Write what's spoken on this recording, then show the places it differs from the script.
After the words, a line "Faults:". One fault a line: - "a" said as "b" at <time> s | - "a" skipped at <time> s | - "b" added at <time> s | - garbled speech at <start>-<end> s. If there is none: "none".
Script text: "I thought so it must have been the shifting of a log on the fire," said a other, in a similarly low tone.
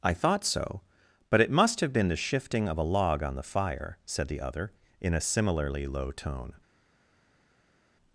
"I thought so but it must have been the shifting of a log on the fire," said the other, in a similarly low tone.
Faults:
- "but" added at 1.3 s
- "a" said as "the" at 4.3 s